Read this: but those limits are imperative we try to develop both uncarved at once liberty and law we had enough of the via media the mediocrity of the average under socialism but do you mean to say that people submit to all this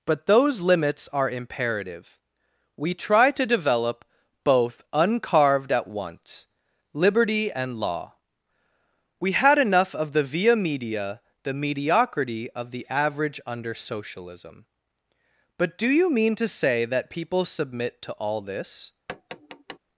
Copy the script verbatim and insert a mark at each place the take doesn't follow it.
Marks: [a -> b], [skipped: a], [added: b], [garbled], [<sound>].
but those limits are imperative we try to develop both uncarved at once liberty and law we had enough of the via media the mediocrity of the average under socialism but do you mean to say that people submit to all this [tap]